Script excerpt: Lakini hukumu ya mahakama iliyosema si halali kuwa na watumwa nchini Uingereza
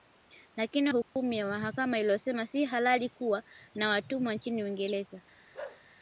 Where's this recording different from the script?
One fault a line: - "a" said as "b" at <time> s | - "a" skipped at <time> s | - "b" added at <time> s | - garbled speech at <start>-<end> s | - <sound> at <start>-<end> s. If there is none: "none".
- dropout at 1.0-1.2 s
- bark at 5.5-5.8 s